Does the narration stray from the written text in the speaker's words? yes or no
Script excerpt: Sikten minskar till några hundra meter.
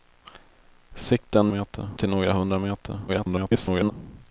yes